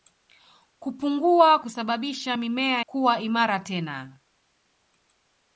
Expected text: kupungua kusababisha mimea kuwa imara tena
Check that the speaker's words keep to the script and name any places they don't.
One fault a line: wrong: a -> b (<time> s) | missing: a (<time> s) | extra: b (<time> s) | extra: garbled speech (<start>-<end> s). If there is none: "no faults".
no faults